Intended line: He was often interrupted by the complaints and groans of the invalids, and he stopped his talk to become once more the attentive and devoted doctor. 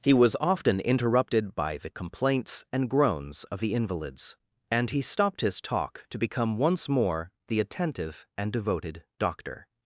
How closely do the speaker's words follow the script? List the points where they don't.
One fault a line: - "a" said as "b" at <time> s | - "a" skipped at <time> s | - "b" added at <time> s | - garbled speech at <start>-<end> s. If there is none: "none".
none